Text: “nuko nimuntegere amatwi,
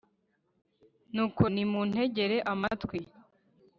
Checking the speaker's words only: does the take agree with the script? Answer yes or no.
yes